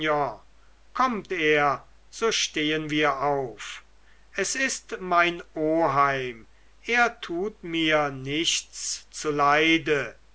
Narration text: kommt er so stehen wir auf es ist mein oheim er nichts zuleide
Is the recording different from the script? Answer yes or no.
yes